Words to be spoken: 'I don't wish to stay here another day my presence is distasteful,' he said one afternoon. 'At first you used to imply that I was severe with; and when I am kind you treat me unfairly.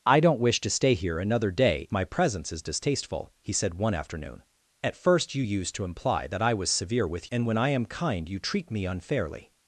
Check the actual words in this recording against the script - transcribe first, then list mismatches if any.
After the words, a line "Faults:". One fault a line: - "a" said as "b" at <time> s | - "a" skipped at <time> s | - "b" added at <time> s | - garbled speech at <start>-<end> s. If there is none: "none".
'I don't wish to stay here another day my presence is distasteful,' he said one afternoon. 'At first you used to imply that I was severe with; and when I am kind you treat me unfairly.
Faults:
none